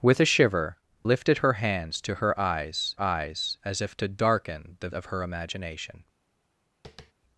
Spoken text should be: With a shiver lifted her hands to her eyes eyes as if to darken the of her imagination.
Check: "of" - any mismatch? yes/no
no